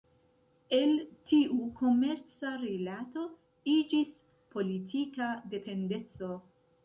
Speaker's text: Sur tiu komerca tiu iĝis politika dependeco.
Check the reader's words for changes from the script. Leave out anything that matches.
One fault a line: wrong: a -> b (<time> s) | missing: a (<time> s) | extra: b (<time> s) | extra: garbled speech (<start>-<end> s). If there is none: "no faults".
wrong: Sur -> El (0.8 s)
wrong: tiu -> rilato (2.6 s)